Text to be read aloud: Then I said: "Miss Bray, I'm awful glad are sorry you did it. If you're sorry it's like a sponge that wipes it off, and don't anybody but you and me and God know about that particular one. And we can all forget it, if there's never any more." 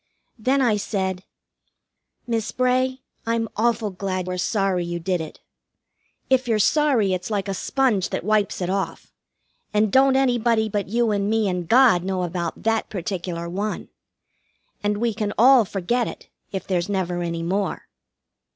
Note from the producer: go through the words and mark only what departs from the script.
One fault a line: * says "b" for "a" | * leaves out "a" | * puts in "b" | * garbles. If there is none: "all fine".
all fine